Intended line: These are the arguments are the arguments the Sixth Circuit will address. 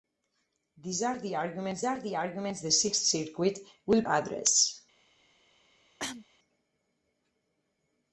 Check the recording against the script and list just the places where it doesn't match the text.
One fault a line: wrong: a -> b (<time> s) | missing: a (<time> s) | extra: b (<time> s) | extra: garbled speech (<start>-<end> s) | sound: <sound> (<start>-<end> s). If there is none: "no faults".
sound: cough (6.0-6.3 s)